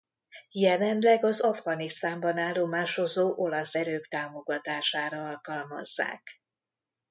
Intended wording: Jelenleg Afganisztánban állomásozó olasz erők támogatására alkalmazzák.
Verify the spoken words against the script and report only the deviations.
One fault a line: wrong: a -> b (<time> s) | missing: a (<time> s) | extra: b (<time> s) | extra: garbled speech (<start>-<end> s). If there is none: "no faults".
extra: az (1.2 s)